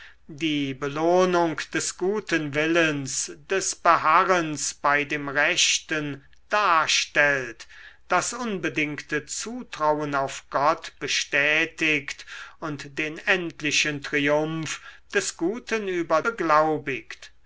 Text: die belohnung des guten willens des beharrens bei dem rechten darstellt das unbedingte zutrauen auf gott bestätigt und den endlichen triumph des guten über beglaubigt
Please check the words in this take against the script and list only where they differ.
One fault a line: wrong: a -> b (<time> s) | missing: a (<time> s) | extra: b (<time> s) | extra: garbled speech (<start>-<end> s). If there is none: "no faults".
no faults